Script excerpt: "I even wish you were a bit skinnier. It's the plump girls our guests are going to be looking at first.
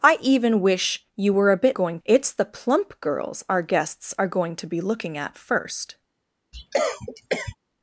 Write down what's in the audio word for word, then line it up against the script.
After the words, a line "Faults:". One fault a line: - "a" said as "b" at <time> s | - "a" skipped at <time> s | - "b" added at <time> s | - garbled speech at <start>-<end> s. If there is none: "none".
"I even wish you were a bit going. It's the plump girls our guests are going to be looking at first.
Faults:
- "skinnier" said as "going" at 1.7 s